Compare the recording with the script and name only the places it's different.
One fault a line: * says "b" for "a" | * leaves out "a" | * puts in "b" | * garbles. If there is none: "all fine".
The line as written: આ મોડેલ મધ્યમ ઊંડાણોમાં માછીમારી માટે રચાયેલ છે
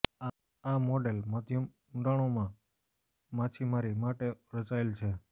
all fine